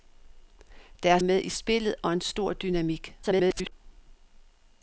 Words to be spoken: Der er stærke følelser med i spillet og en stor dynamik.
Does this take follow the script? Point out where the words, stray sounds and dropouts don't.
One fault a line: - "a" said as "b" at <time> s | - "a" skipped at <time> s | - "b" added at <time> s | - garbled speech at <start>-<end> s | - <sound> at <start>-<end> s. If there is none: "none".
- "stærke følelser" skipped at 1.2 s
- garbled speech at 3.2-3.7 s